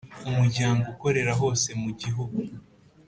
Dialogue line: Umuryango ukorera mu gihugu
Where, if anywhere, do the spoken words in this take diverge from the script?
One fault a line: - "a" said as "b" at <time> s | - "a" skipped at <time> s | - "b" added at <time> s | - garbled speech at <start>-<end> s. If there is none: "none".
- "hose" added at 1.4 s